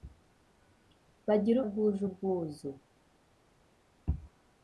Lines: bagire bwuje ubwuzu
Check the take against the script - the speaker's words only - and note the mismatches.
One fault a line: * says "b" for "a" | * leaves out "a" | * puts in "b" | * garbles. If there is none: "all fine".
all fine